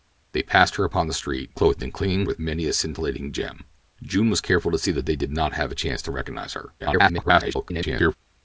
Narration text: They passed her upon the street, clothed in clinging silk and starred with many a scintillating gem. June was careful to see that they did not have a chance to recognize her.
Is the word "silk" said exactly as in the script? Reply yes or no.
no